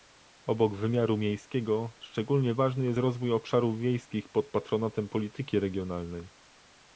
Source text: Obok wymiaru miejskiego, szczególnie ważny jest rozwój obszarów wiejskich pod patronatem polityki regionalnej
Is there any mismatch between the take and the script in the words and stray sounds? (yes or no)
no